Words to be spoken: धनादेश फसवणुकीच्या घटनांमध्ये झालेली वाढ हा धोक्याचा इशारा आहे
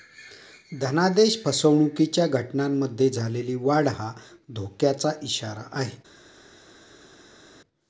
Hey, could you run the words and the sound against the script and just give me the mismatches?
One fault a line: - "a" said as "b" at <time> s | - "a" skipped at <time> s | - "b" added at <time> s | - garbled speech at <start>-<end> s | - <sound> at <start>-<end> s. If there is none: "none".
none